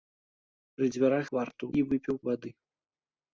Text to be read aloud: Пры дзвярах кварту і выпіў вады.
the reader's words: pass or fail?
pass